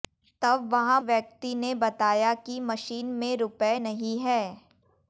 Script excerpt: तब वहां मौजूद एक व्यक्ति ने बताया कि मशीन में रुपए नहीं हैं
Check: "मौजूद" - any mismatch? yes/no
yes